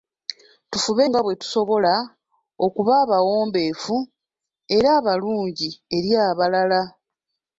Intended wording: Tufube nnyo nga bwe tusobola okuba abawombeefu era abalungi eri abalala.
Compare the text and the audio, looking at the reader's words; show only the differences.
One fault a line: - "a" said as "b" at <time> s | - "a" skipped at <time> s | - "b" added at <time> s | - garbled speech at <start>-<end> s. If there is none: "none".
- "nnyo" skipped at 1.1 s